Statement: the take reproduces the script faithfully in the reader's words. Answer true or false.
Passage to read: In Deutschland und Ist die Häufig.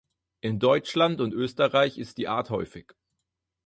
false